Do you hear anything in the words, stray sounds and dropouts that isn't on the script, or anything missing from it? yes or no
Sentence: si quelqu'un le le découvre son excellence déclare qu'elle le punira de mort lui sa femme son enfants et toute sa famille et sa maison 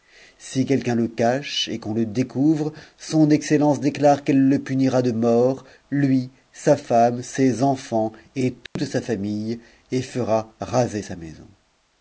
yes